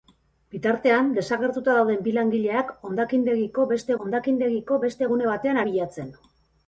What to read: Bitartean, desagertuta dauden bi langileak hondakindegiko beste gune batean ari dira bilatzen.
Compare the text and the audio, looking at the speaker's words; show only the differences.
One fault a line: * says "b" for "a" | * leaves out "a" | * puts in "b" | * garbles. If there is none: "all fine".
* puts in "hondakindegiko beste"
* leaves out "ari dira"